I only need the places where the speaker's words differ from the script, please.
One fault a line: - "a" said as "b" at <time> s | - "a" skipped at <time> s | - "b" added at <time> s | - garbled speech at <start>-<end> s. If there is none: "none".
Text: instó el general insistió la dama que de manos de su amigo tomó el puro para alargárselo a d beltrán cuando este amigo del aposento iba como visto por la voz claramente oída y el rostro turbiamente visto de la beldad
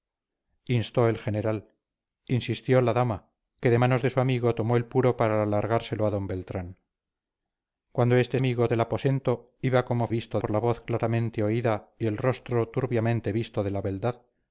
none